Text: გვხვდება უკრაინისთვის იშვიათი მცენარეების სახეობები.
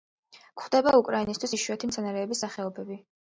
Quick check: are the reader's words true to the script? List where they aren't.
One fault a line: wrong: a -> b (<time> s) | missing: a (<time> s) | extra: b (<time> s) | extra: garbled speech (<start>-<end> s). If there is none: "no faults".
no faults